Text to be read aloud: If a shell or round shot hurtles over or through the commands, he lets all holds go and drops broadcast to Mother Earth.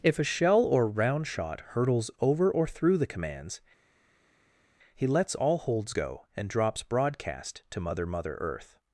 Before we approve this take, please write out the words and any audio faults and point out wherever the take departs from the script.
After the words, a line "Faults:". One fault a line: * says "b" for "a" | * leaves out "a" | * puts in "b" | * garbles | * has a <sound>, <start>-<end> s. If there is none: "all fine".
If a shell or round shot hurtles over or through the commands, he lets all holds go and drops broadcast to Mother Mother Earth.
Faults:
* puts in "Mother"